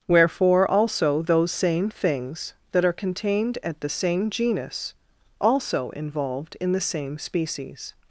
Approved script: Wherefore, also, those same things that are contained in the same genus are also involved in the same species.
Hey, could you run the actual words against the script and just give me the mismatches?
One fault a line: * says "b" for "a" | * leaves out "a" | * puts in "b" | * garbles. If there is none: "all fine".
* says "at" for "in"
* leaves out "are"